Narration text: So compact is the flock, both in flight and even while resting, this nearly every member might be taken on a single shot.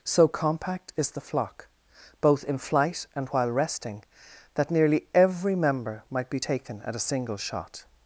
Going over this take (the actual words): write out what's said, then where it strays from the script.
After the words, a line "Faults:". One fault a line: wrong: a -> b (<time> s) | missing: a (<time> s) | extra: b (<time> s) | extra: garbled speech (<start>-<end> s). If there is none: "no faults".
So compact is the flock, both in flight and while resting, that nearly every member might be taken at a single shot.
Faults:
missing: even (3.3 s)
wrong: this -> that (4.5 s)
wrong: on -> at (6.8 s)